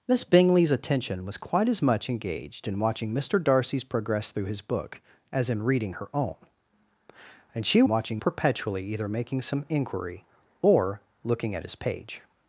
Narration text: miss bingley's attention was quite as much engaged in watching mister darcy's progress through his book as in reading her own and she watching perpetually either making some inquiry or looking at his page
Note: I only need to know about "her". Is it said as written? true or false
true